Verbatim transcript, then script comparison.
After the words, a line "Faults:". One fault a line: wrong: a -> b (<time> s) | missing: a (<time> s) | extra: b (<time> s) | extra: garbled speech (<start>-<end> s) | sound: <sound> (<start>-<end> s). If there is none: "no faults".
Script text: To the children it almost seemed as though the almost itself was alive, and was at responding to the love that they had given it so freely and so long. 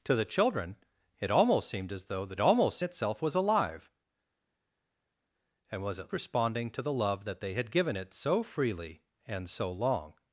To the children it almost seemed as though the almost itself was alive, and was at responding to the love that they had given it so freely and so long.
Faults:
no faults